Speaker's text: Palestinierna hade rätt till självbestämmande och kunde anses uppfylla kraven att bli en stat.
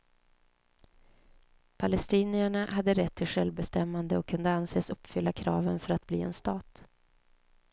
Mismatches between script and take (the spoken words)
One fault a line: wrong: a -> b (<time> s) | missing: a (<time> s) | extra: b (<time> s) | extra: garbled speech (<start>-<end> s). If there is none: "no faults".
extra: för (5.8 s)